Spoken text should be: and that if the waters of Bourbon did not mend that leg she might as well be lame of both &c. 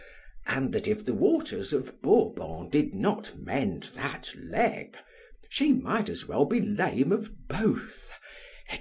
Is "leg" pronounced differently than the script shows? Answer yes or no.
no